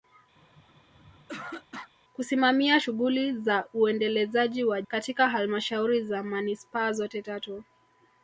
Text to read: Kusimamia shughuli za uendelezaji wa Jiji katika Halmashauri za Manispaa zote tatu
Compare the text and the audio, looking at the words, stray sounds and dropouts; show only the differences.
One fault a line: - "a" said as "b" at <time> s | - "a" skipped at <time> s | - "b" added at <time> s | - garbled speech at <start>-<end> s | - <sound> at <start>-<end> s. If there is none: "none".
- throat clearing at 0.4-1.9 s
- "Jiji" skipped at 4.8 s